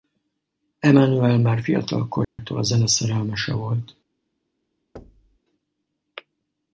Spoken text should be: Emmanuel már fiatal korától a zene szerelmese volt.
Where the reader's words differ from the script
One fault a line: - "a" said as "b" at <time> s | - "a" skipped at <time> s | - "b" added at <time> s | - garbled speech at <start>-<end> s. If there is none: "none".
none